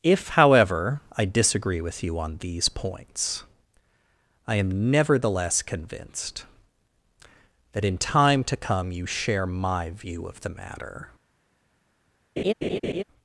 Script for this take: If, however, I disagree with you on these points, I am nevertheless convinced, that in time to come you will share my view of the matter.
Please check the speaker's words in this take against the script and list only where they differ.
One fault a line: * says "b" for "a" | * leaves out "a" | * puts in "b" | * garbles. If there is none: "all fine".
* leaves out "will"